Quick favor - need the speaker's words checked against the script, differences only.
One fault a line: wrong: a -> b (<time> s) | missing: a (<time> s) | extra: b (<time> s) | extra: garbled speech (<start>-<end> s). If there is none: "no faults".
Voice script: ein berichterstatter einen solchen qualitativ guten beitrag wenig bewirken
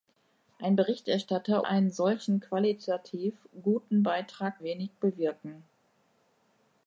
no faults